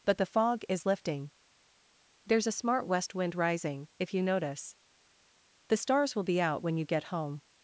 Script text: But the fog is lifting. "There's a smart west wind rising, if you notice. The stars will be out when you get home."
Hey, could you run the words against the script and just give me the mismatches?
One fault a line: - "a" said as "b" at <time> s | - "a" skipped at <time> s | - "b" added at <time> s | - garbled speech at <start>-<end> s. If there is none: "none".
none